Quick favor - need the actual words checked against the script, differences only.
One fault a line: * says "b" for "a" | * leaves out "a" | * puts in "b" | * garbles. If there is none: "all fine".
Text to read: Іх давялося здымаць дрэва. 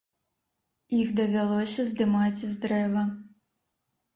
* puts in "з"